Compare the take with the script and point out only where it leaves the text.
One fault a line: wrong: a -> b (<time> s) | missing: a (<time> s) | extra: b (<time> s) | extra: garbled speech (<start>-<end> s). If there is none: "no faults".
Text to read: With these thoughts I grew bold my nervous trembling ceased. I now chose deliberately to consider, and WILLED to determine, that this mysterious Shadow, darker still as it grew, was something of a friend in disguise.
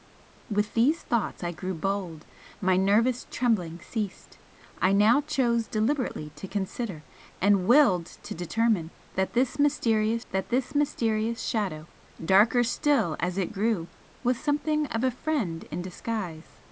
extra: that this mysterious (10.3 s)